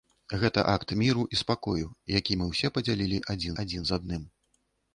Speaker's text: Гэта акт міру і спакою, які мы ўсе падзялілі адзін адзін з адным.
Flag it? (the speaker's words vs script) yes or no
no